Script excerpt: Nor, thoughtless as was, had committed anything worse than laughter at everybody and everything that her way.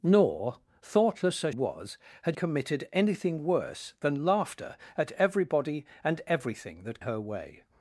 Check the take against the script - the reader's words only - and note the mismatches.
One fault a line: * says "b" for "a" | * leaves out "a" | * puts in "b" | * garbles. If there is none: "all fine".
all fine